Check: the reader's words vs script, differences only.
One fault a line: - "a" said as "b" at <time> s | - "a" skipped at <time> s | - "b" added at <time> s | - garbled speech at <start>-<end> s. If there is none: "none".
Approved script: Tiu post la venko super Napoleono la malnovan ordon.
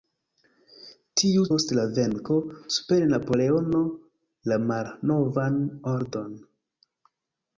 none